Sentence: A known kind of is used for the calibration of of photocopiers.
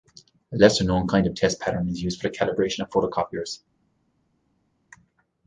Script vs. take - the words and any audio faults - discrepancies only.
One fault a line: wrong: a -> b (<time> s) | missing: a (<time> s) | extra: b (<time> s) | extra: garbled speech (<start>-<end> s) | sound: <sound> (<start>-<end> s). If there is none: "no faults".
extra: lesser (0.6 s)
extra: test pattern (1.4 s)
missing: of (2.9 s)